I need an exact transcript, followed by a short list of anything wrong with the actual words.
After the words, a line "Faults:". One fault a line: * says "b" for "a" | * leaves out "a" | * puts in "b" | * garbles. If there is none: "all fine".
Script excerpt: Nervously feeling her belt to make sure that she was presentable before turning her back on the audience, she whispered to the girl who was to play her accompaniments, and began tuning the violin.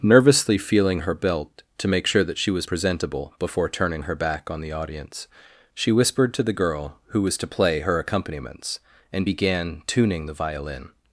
Nervously feeling her belt to make sure that she was presentable before turning her back on the audience, she whispered to the girl who was to play her accompaniments, and began tuning the violin.
Faults:
all fine